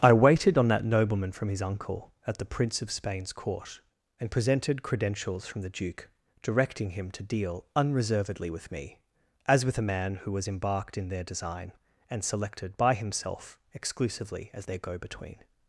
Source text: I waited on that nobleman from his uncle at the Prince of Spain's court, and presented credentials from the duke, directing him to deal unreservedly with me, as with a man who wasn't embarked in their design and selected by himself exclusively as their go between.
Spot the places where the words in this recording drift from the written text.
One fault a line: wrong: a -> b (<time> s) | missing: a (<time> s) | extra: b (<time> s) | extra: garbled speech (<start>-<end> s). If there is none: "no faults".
wrong: wasn't -> was (10.3 s)